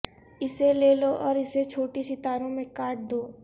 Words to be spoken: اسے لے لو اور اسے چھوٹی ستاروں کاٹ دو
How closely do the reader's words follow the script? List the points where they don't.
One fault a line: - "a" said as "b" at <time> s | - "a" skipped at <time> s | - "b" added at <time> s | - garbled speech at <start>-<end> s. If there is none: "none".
- "میں" added at 2.5 s